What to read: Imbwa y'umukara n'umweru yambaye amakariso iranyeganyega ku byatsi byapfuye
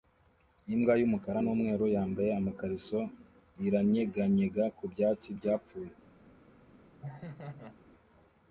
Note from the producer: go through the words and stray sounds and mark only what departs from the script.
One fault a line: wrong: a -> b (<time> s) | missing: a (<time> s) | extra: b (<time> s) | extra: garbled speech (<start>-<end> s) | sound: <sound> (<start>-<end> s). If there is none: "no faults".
sound: laugh (7.0-7.8 s)